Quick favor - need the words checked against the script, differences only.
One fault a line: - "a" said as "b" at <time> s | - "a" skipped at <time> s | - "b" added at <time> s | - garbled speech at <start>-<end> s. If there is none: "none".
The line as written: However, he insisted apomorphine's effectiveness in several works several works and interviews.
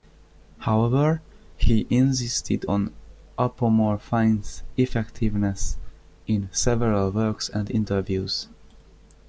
- "on" added at 2.7 s
- "several works" skipped at 7.5 s